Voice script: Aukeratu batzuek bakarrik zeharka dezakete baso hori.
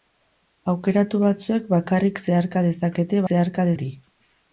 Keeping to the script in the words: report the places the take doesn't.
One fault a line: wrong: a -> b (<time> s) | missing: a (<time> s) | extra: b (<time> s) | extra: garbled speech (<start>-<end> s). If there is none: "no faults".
wrong: baso -> zeharka (3.3 s)